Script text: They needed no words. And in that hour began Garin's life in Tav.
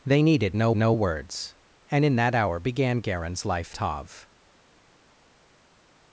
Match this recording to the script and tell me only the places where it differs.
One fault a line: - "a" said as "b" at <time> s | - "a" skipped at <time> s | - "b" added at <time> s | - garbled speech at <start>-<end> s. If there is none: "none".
- "no" added at 0.8 s
- "in" skipped at 3.7 s